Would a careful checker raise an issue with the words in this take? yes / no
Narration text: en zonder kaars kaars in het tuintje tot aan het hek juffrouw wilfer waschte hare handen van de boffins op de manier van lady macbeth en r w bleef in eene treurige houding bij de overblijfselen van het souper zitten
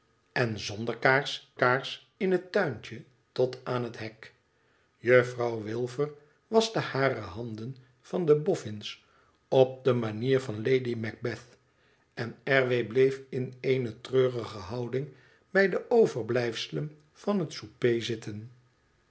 no